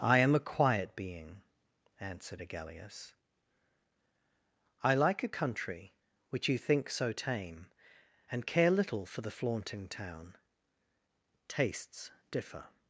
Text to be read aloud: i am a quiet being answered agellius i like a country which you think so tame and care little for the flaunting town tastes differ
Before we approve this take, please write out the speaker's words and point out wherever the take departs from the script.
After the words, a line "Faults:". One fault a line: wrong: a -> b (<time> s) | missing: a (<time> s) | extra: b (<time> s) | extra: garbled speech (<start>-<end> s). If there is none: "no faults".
i am a quiet being answered agellius i like a country which you think so tame and care little for the flaunting town tastes differ
Faults:
no faults